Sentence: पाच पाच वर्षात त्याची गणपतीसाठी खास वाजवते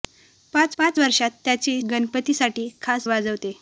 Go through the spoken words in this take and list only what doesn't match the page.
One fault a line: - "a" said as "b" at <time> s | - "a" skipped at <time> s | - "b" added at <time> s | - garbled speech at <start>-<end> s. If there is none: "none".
none